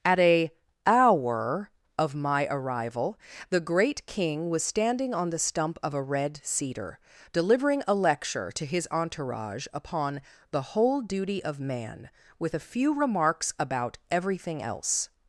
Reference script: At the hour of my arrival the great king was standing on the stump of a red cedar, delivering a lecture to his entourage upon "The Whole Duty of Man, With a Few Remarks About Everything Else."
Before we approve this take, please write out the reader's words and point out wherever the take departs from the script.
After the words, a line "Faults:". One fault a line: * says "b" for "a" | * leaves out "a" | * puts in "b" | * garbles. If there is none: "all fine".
At a hour of my arrival the great king was standing on the stump of a red cedar, delivering a lecture to his entourage upon "The Whole Duty of Man, With a Few Remarks About Everything Else."
Faults:
* says "a" for "the"